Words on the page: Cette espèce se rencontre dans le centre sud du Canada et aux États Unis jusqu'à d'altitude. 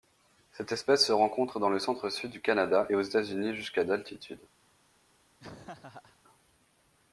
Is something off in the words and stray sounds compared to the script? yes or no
yes